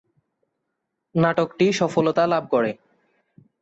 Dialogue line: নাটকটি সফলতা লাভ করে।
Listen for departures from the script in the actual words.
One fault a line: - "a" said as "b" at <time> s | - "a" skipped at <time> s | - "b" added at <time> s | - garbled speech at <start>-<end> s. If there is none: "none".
none